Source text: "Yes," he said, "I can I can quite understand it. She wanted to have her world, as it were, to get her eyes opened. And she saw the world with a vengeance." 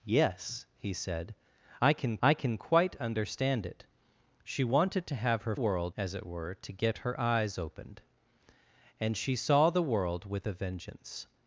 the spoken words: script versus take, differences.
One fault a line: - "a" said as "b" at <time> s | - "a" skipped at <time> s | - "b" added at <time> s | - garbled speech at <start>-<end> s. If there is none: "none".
none